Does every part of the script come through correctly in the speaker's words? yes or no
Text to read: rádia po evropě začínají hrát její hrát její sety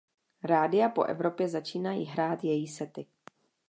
no